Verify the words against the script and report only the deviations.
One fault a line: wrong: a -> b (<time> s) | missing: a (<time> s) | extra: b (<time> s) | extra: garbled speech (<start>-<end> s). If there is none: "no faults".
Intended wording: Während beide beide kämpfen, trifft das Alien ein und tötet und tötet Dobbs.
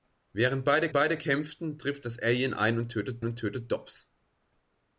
no faults